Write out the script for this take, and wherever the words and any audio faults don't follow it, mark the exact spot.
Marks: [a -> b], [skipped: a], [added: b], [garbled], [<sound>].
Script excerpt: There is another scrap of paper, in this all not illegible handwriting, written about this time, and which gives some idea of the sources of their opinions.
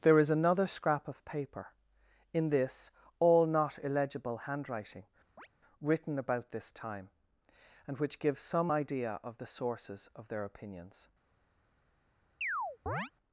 There is another scrap of paper, in this all not illegible handwriting, [chirp] written about this time, and which gives some idea of the sources of their opinions. [chirp]